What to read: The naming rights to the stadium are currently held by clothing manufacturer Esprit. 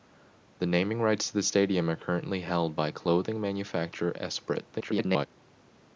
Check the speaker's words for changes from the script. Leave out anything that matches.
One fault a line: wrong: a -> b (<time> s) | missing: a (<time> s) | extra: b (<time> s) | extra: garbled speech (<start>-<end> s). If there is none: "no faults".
extra: garbled speech (4.7-5.3 s)